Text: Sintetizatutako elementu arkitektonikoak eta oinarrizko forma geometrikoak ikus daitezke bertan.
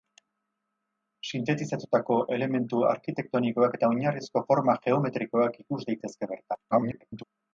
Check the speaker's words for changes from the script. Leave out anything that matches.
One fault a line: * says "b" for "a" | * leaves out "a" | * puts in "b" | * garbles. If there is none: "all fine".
* garbles